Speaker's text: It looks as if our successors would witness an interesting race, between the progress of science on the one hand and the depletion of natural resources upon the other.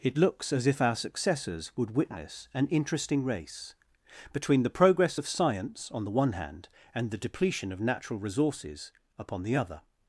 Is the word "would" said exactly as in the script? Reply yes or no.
yes